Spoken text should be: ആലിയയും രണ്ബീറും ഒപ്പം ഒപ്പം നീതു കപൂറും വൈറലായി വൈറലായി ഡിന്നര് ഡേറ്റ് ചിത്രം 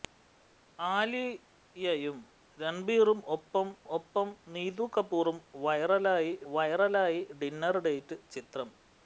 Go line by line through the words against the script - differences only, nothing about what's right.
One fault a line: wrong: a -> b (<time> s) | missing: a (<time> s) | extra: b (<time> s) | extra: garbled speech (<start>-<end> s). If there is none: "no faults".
no faults